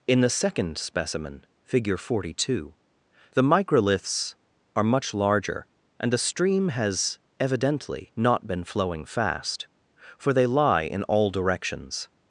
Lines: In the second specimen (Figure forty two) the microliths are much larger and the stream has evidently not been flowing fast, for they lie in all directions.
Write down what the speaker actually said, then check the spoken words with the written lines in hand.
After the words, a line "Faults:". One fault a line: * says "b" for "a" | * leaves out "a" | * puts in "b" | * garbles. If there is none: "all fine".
In the second specimen (Figure forty two) the microliths are much larger and the stream has evidently not been flowing fast, for they lie in all directions.
Faults:
all fine